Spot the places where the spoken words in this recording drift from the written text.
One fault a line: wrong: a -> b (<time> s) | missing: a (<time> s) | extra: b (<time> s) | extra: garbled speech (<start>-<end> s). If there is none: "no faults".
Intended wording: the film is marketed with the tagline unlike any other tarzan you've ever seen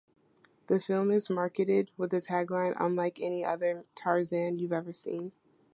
no faults